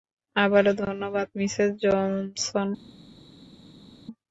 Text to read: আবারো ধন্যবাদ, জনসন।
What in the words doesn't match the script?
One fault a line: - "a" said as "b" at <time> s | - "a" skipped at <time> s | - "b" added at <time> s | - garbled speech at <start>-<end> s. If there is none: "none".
- "মিসেস" added at 1.4 s